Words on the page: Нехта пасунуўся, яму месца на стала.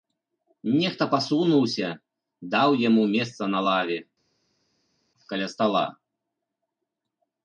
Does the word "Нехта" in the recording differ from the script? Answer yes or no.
no